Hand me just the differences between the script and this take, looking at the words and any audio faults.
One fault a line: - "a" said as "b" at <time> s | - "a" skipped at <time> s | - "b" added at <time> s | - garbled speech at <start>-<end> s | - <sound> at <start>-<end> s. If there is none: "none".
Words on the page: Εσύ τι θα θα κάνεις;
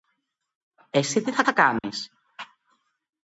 - dropout at 1.8-1.8 s